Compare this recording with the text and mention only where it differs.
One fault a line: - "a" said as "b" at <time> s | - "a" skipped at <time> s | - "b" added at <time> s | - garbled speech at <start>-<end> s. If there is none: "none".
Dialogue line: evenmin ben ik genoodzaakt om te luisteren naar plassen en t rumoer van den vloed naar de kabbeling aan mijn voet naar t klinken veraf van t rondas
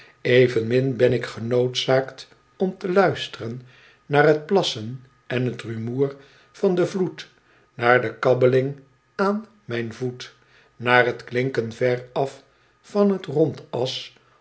- "t" added at 4.3 s